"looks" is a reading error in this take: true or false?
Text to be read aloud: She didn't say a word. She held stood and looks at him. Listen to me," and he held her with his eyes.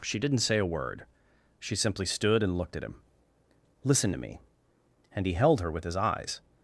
true